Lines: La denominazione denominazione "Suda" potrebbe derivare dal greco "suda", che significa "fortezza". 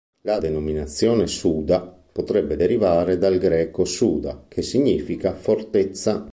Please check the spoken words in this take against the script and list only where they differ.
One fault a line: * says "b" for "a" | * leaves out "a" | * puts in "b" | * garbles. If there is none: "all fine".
* leaves out "denominazione"